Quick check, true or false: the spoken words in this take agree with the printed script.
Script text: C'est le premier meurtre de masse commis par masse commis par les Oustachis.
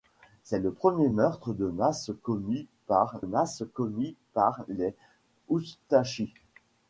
true